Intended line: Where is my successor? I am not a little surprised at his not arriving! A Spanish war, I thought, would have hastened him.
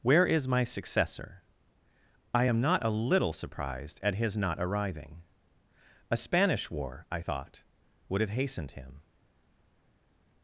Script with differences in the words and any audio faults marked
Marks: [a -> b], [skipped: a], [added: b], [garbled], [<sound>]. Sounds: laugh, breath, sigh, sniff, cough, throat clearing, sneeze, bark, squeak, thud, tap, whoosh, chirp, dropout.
Where is my successor? I am not a little surprised at his not arriving! A Spanish war, I thought, would have hastened him.